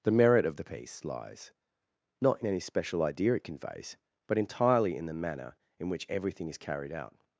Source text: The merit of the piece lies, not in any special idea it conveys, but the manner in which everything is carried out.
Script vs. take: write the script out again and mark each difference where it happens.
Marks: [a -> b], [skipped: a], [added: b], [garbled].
The merit of the piece lies, not in any special idea it conveys, but [added: entirely in] the manner in which everything is carried out.